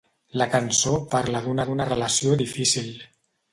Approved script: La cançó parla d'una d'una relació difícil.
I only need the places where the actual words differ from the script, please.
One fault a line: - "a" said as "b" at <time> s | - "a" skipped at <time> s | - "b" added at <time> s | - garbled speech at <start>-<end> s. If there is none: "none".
none